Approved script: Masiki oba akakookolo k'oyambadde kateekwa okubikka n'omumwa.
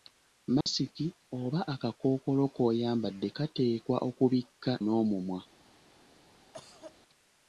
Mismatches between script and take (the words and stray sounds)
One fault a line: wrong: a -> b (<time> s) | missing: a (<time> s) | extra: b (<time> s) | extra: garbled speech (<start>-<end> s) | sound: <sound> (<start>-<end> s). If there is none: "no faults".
sound: dropout (0.6-0.7 s)
sound: cough (6.5-7.0 s)